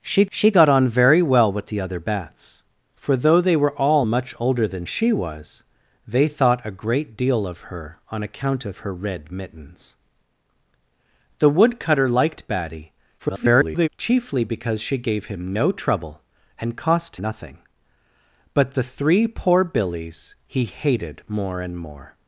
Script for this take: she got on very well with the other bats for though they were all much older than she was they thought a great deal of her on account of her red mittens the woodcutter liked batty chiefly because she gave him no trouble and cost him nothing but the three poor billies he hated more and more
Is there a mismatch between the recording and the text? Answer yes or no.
yes